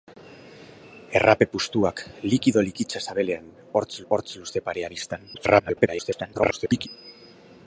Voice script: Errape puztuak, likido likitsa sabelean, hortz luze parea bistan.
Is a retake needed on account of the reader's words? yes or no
yes